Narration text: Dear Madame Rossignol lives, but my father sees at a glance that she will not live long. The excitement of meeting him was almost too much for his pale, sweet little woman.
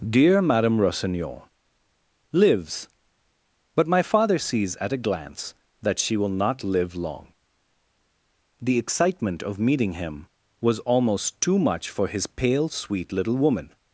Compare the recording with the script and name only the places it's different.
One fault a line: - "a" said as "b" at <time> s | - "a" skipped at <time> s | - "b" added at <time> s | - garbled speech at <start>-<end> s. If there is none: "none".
none